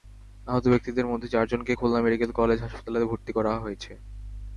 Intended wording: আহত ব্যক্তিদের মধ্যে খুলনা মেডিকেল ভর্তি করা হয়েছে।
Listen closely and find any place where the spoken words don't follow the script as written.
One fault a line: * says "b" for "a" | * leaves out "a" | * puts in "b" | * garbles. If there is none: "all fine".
* puts in "চারজনকে"
* puts in "কলেজ হাসপাতালে"